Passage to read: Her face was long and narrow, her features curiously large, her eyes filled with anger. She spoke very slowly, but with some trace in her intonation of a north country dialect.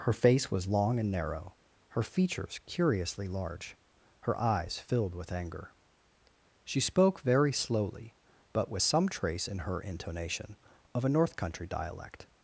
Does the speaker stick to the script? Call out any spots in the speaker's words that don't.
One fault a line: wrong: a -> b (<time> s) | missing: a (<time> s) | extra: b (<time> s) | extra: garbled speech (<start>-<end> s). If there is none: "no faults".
no faults